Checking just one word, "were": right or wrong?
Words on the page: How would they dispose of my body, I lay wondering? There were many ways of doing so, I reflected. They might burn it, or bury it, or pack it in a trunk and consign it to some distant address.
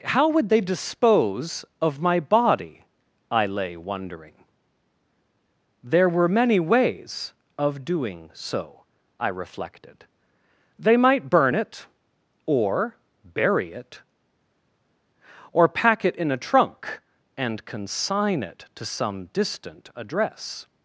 right